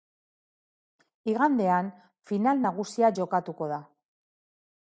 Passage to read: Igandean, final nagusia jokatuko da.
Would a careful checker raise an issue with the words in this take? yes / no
no